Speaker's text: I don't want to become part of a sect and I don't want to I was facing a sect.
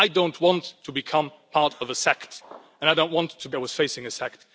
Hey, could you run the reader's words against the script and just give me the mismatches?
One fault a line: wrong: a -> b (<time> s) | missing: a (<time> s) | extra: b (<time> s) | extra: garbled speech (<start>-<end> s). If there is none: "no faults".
no faults